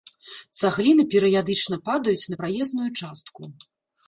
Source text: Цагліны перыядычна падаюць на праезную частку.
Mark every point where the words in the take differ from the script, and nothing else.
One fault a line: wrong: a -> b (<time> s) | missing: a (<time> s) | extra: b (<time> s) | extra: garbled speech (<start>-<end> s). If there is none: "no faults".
no faults